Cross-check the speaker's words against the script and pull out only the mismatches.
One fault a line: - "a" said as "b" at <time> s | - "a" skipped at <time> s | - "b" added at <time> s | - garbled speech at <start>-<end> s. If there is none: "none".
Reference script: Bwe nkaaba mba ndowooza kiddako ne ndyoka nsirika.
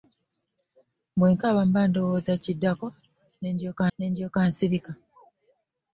- "ne ndyoka" added at 4.0 s